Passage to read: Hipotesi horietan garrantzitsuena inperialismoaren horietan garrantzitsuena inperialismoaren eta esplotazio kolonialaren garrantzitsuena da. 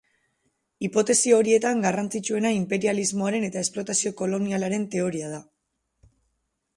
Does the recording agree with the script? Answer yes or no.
no